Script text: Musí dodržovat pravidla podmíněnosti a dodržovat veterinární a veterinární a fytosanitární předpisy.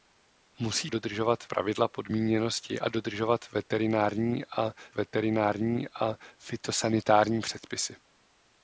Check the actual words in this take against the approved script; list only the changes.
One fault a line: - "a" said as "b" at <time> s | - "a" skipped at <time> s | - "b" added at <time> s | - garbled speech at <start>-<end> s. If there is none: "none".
none